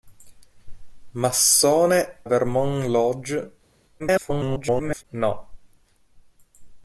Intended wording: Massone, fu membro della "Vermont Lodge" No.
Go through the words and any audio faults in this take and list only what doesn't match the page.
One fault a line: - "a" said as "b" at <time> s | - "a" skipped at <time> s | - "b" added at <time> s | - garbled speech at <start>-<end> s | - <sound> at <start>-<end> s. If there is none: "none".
- "fu membro della" skipped at 2.2 s
- garbled speech at 4.0-5.0 s